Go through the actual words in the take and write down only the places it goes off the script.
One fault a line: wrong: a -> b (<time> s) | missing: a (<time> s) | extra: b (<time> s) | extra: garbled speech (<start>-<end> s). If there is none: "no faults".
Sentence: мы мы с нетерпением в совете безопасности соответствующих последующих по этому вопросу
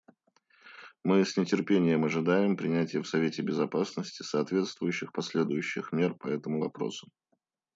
missing: мы (1.2 s)
extra: ожидаем принятия (2.0 s)
extra: мер (5.9 s)